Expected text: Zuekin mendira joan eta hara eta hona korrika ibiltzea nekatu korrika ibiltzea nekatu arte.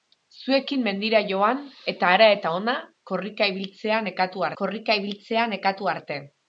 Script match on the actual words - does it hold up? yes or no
yes